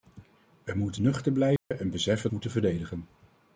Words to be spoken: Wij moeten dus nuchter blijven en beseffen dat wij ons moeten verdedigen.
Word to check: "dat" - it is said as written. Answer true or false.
false